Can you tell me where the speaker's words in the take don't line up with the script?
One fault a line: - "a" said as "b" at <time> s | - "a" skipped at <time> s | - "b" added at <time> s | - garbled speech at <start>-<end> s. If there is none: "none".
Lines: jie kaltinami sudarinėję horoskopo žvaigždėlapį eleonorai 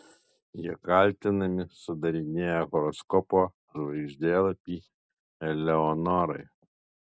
none